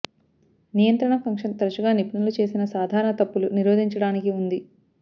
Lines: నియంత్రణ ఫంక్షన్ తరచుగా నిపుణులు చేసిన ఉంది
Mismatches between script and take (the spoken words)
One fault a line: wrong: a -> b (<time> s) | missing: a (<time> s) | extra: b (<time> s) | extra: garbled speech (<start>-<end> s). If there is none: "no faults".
extra: సాధారణ తప్పులు నిరోధించడానికి (2.7 s)